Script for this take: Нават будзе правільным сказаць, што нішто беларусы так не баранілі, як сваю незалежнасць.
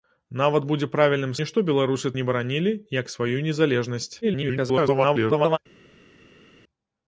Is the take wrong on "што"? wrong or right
wrong